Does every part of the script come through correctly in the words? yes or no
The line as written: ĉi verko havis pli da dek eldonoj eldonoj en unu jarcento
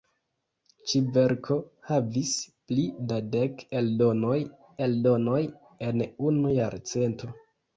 yes